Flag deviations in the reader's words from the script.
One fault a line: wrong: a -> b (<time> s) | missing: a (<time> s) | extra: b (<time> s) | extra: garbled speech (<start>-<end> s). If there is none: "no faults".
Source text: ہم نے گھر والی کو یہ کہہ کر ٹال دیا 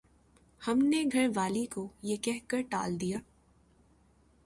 no faults